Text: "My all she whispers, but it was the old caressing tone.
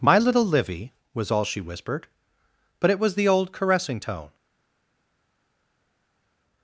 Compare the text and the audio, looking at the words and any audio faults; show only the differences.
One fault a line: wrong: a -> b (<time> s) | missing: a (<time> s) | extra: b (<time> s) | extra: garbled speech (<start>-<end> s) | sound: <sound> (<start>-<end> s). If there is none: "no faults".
extra: little Livy was (0.2 s)
wrong: whispers -> whispered (1.6 s)